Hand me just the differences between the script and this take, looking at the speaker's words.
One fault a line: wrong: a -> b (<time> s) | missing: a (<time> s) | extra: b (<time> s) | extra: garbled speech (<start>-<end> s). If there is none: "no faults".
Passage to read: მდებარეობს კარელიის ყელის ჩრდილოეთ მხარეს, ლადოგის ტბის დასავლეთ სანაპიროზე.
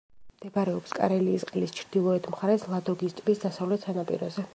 no faults